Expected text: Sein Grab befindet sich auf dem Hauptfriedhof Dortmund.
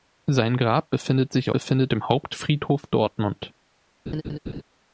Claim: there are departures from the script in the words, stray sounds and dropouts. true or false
true